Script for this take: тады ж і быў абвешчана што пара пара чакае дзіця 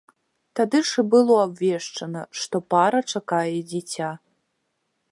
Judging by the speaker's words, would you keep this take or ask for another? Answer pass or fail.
fail